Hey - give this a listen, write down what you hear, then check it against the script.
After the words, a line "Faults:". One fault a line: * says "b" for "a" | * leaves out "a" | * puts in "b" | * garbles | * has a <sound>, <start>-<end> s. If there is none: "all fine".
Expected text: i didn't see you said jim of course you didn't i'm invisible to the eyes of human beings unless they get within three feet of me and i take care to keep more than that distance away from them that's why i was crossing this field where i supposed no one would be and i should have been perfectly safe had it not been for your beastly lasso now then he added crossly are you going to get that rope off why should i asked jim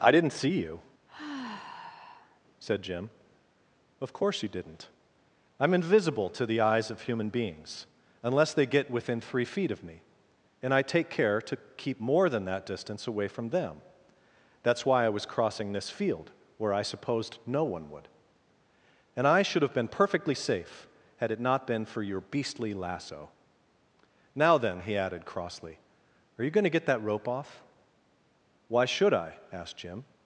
i didn't see you said jim of course you didn't i'm invisible to the eyes of human beings unless they get within three feet of me and i take care to keep more than that distance away from them that's why i was crossing this field where i supposed no one would and i should have been perfectly safe had it not been for your beastly lasso now then he added crossly are you going to get that rope off why should i asked jim
Faults:
* has a sigh, 1.1-2.4 s
* leaves out "be"